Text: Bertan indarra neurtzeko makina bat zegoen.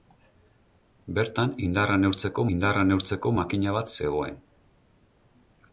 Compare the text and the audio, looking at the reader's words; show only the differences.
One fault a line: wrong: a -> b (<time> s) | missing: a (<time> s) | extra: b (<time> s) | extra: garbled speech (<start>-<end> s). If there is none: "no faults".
extra: indarra neurtzeko (2.5 s)